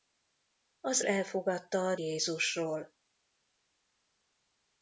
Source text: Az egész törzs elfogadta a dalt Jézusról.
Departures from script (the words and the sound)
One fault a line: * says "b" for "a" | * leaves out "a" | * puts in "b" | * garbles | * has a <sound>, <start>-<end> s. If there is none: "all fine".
* leaves out "egész törzs"
* leaves out "dalt"